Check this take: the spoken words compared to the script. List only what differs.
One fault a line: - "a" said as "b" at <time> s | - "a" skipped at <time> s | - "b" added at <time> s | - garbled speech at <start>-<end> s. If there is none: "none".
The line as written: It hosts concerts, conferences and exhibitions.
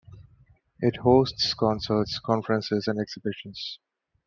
none